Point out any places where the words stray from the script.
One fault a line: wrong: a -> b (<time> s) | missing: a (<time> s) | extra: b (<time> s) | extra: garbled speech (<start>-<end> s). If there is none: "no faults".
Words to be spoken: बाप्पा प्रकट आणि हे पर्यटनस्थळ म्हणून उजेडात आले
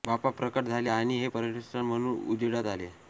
extra: झाले (0.7 s)